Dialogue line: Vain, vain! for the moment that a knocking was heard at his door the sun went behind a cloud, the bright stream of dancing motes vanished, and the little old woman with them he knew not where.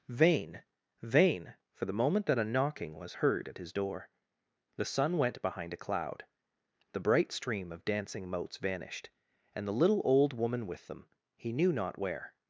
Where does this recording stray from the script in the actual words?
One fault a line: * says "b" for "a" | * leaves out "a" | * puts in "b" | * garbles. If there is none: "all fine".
all fine